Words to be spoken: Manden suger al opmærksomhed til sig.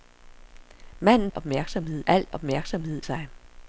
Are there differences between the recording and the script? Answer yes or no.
yes